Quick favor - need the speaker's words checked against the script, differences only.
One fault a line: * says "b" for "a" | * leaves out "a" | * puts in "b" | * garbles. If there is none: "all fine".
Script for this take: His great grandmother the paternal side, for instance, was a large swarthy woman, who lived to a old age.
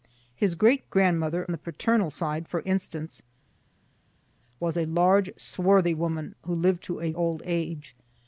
all fine